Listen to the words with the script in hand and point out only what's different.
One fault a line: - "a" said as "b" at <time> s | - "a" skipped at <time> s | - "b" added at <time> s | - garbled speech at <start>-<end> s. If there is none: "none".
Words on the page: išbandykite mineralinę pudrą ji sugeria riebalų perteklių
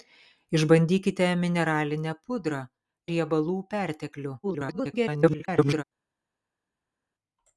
- "ji sugeria" skipped at 2.6 s
- garbled speech at 4.4-5.8 s